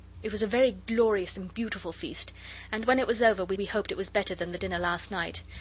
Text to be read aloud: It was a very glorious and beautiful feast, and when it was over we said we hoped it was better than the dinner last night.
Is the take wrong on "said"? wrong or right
wrong